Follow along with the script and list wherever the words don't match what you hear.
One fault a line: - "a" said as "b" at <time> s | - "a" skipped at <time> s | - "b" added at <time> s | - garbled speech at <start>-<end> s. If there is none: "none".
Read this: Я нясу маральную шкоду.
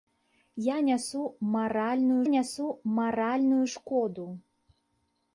- "нясу маральную" added at 2.3 s